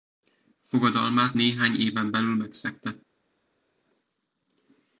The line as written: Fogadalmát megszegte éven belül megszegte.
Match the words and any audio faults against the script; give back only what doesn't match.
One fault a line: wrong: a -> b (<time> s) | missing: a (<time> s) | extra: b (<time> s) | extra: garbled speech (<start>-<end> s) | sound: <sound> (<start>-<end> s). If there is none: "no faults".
wrong: megszegte -> néhány (1.3 s)